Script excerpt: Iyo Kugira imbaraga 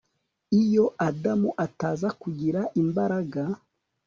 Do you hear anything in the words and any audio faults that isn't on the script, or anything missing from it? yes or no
yes